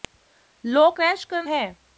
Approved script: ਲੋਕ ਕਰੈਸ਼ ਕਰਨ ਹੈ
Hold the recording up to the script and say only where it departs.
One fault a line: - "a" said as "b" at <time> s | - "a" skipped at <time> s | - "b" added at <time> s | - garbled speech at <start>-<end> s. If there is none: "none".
none